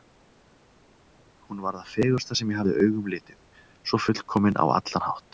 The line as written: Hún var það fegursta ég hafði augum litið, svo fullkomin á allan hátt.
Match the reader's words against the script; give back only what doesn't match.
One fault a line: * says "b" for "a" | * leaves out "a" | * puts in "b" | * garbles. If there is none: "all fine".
* puts in "sem"